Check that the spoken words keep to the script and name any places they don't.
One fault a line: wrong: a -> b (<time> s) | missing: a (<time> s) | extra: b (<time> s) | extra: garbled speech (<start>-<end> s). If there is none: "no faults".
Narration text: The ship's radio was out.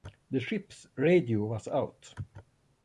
no faults